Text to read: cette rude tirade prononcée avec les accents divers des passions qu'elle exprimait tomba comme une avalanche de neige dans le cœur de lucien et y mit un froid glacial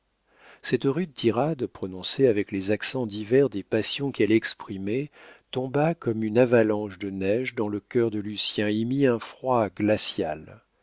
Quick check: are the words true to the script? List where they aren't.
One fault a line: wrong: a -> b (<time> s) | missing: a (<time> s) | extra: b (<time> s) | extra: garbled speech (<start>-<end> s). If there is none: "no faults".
no faults